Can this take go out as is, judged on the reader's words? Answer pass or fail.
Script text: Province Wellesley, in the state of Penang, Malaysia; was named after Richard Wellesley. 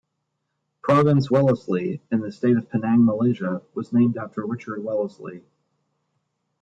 pass